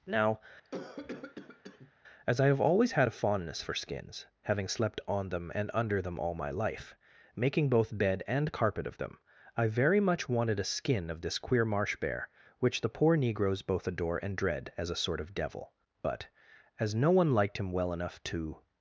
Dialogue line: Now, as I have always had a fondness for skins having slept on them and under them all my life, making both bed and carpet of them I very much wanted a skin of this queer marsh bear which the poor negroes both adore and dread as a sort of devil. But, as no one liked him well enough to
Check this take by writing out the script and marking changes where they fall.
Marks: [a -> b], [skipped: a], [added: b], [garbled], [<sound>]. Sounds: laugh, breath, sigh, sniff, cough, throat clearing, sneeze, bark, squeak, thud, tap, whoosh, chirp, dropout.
Now, [cough] as I have always had a fondness for skins having slept on them and under them all my life, making both bed and carpet of them I very much wanted a skin of this queer marsh bear which the poor negroes both adore and dread as a sort of devil. But, as no one liked him well enough to